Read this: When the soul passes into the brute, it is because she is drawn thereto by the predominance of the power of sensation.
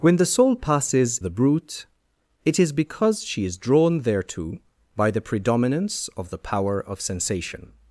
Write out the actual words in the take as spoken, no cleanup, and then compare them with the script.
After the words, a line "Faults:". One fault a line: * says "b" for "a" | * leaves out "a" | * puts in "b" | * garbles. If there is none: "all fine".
When the soul passes the brute, it is because she is drawn thereto by the predominance of the power of sensation.
Faults:
* leaves out "into"